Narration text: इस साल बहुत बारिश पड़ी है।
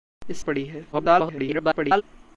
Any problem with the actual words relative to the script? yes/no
yes